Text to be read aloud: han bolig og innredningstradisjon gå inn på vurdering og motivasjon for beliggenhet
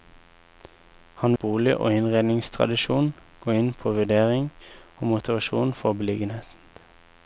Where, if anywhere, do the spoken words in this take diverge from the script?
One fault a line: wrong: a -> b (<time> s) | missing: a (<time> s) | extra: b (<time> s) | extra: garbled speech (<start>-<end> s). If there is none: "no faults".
no faults